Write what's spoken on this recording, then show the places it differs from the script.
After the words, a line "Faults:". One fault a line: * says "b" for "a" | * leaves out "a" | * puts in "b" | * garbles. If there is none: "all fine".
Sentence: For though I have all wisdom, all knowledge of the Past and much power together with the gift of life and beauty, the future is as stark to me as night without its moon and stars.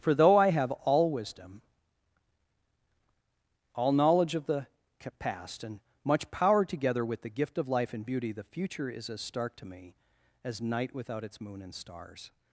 For though I have all wisdom, all knowledge of the Past and much power together with the gift of life and beauty, the future is as stark to me as night without its moon and stars.
Faults:
all fine